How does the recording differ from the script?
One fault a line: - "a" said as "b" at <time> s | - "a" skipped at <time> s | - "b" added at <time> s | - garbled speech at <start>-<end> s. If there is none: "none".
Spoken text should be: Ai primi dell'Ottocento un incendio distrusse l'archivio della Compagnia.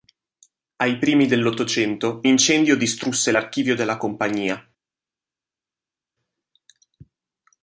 - "un" skipped at 2.2 s